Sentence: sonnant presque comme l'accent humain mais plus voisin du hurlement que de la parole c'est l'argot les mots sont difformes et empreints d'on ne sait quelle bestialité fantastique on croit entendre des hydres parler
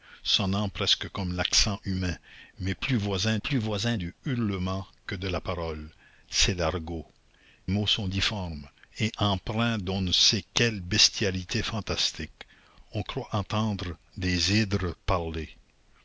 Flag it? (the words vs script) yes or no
yes